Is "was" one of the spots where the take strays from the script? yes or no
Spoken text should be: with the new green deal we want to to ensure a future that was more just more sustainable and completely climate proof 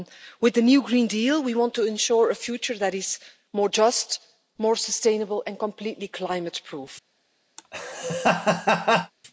yes